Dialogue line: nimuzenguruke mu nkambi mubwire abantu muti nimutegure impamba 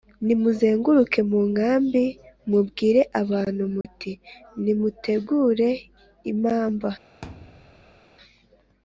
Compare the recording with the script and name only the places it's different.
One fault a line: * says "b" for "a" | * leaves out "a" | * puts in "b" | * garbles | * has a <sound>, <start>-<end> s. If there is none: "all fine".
* has a dropout, 3.8-3.8 s
* has a thud, 7.2-8.0 s